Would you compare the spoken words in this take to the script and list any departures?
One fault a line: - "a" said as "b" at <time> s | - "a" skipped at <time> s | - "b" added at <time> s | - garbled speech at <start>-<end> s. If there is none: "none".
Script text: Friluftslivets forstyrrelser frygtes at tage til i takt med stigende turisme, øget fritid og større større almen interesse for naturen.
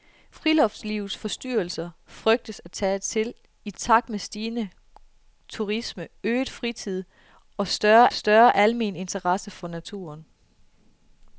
none